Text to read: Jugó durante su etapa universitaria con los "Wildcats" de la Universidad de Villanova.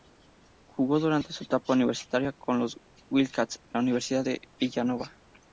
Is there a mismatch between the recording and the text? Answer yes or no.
no